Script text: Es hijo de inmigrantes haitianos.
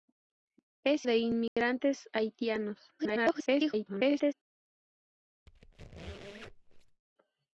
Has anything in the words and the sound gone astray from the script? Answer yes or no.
yes